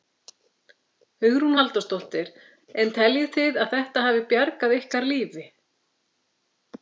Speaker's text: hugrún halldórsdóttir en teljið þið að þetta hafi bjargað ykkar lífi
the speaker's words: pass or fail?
pass